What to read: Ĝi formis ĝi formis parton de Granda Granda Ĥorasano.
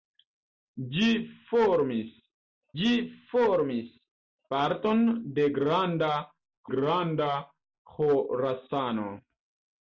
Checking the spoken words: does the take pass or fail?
pass